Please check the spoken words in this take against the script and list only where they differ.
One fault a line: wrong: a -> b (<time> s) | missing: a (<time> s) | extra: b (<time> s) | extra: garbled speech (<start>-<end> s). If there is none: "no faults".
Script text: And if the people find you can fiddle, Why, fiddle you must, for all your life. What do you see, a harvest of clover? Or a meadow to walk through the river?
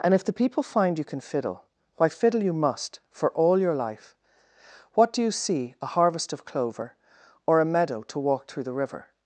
no faults